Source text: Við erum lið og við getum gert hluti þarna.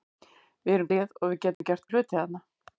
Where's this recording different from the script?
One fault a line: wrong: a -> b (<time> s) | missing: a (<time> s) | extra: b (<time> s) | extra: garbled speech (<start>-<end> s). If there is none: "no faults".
no faults